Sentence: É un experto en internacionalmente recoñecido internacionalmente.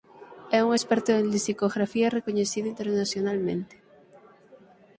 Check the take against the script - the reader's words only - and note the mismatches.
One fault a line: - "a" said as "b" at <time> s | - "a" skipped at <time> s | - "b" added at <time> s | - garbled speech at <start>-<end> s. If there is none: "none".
- "internacionalmente" said as "lexicografía" at 1.4 s